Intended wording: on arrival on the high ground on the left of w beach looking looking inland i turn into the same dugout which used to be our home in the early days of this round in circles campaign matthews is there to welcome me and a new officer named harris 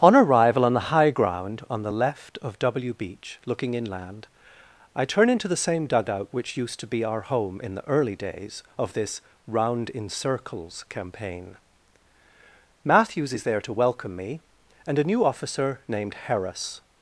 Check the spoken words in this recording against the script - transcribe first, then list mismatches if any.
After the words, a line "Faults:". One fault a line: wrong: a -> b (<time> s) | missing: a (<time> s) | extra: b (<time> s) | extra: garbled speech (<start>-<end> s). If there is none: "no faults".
on arrival on the high ground on the left of w beach looking inland i turn into the same dugout which used to be our home in the early days of this round in circles campaign matthews is there to welcome me and a new officer named harris
Faults:
missing: looking (3.7 s)